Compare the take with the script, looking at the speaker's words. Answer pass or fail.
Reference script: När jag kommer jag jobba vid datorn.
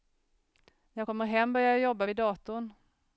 fail